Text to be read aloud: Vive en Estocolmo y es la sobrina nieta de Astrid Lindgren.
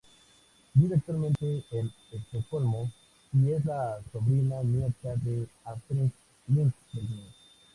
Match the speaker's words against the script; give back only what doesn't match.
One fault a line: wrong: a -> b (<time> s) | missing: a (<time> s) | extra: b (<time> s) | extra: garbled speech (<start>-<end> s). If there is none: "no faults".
extra: actualmente (0.9 s)